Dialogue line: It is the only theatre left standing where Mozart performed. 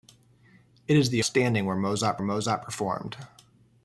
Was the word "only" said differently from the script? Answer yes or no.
yes